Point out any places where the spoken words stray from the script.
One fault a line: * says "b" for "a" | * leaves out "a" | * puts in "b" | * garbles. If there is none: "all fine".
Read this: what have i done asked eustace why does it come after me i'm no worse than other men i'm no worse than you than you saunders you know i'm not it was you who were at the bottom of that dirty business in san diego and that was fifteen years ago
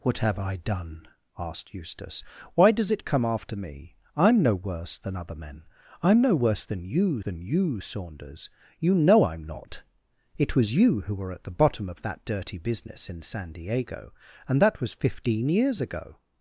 all fine